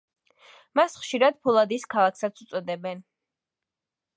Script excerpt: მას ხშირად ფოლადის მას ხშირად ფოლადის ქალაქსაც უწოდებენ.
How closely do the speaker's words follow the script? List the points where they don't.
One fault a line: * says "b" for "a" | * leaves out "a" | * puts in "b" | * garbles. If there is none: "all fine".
* leaves out "მას ხშირად ფოლადის"